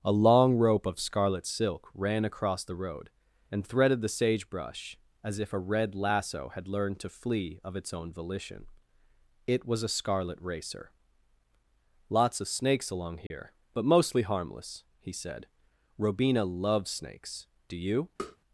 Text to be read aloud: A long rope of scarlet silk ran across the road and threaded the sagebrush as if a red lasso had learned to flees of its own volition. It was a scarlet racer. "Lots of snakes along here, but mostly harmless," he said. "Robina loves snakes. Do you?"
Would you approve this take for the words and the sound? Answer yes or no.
no